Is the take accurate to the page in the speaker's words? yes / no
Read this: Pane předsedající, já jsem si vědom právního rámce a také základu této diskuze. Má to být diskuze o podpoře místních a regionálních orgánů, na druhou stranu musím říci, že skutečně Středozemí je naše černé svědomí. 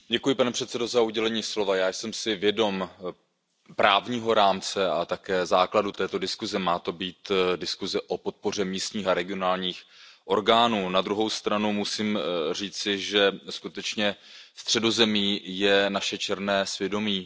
yes